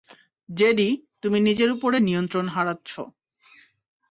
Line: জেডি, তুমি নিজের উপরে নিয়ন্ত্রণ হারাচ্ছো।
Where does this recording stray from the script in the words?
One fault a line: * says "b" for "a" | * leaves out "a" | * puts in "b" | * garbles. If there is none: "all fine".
all fine